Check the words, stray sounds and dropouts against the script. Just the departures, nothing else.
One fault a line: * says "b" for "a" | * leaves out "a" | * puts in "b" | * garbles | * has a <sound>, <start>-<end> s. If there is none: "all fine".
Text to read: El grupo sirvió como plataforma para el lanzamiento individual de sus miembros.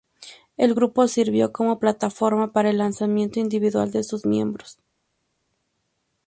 all fine